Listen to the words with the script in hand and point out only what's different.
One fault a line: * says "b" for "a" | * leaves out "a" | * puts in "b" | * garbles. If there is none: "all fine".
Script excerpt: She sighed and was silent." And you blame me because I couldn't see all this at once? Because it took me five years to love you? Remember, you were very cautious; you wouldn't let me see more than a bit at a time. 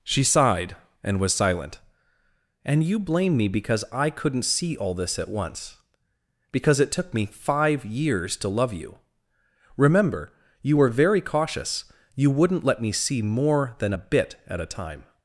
all fine